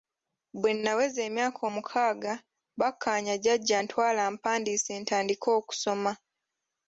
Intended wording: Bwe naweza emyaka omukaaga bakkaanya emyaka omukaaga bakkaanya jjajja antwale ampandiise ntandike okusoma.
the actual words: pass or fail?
fail